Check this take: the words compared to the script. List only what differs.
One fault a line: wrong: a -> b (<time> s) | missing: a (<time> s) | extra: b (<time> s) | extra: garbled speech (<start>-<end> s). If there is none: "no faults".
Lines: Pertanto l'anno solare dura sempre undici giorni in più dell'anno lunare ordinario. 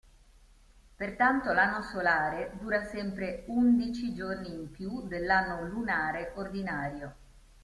no faults